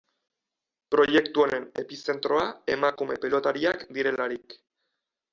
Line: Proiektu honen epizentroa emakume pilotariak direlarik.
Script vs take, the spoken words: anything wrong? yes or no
no